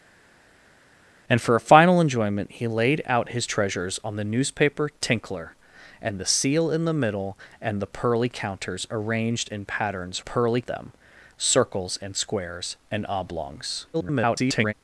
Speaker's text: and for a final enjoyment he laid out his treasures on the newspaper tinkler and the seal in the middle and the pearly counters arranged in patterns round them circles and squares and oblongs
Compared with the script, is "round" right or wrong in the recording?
wrong